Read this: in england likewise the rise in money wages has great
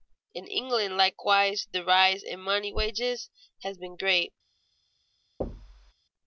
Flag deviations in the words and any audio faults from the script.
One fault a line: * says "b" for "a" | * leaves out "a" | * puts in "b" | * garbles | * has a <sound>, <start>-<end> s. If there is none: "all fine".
* puts in "been"
* has a thud, 5.4-5.9 s